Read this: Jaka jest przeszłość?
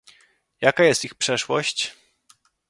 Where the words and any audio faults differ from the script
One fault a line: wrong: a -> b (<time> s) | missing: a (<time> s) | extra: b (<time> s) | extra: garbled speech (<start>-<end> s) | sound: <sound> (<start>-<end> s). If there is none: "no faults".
extra: ich (1.0 s)